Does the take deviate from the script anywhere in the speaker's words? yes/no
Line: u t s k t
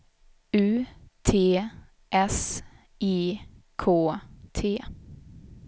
yes